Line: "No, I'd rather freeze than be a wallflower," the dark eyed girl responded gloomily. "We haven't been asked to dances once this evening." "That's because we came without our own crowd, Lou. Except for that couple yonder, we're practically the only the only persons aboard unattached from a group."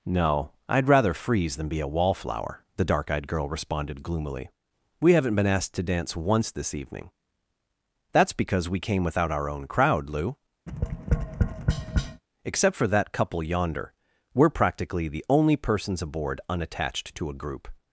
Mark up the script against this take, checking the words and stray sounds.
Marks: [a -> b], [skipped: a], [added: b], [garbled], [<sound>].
"No, I'd rather freeze than be a wallflower," the dark eyed girl responded gloomily. "We haven't been asked to [dances -> dance] once this evening." "That's because we came without our own crowd, Lou. [tap] Except for that couple yonder, we're practically the only [skipped: the only] persons aboard unattached [from -> to] a group."